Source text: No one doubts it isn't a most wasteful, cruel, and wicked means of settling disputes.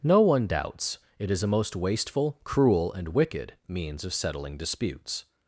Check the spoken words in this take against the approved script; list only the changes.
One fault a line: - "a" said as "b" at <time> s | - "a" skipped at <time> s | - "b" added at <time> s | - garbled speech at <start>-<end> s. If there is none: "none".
- "isn't" said as "is" at 1.3 s